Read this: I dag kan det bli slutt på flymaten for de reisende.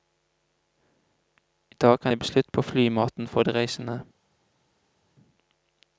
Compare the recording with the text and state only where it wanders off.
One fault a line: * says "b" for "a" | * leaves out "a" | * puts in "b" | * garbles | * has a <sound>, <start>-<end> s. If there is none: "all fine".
all fine